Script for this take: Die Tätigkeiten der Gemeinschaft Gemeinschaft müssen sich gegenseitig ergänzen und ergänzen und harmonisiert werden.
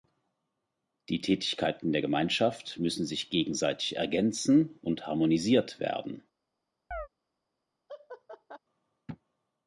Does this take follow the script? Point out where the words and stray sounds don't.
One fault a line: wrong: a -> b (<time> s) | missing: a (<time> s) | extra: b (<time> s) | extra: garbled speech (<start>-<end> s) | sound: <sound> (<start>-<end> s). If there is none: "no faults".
missing: Gemeinschaft (2.8 s)
missing: ergänzen und (5.1 s)
sound: chirp (6.9-7.1 s)
sound: laugh (7.9-8.6 s)